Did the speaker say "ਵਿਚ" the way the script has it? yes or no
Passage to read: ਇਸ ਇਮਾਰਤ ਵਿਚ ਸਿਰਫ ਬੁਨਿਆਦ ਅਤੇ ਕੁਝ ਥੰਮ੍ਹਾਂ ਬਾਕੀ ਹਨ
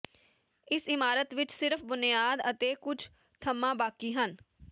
yes